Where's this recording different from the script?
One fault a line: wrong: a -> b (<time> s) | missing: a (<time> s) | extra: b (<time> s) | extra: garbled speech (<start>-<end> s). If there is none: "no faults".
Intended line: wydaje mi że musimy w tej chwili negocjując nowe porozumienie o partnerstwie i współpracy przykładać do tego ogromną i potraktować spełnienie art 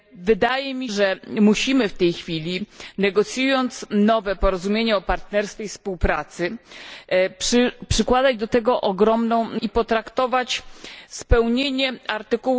no faults